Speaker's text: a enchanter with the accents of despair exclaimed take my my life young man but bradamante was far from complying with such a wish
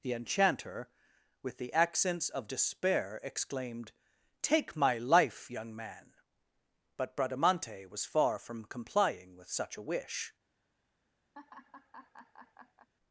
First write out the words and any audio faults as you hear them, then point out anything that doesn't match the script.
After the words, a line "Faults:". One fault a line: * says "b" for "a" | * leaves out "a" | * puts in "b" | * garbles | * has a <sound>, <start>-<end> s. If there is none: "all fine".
the enchanter with the accents of despair exclaimed take my life young man but bradamante was far from complying with such a wish
Faults:
* says "the" for "a"
* leaves out "my"
* has a laugh, 11.3-12.9 s